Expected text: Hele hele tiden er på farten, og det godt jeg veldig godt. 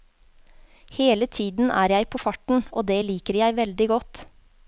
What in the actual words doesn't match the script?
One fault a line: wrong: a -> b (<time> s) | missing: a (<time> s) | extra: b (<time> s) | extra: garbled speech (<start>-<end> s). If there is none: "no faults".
missing: hele (1.3 s)
extra: jeg (1.9 s)
wrong: godt -> liker (3.0 s)